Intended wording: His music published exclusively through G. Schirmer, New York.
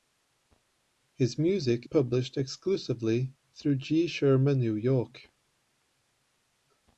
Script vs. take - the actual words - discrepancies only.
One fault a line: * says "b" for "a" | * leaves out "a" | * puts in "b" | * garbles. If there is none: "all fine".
all fine